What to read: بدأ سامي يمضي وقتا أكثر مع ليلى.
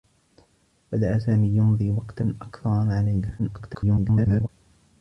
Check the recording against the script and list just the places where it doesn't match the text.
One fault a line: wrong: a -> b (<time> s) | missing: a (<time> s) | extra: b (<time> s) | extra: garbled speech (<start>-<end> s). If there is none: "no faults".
extra: garbled speech (3.4-4.5 s)